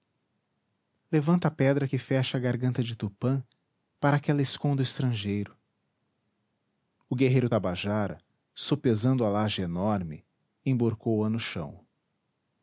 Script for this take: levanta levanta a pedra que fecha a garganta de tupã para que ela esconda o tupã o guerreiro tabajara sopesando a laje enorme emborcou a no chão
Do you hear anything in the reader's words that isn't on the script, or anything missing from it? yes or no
yes